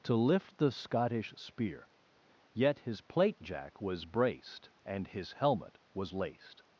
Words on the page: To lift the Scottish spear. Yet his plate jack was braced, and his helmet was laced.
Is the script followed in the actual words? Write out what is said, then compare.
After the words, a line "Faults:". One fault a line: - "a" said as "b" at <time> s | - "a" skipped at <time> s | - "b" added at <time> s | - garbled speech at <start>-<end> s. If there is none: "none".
To lift the Scottish spear. Yet his plate jack was braced, and his helmet was laced.
Faults:
none